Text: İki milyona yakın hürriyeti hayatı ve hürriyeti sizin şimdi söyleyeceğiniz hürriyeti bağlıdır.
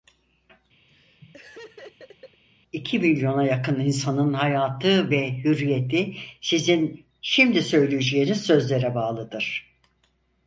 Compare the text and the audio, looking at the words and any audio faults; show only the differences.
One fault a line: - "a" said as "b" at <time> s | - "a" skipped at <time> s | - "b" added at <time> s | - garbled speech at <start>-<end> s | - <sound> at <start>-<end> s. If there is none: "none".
- laugh at 0.9-2.4 s
- "hürriyeti" said as "insanın" at 3.8 s
- "hürriyeti" said as "sözlere" at 8.5 s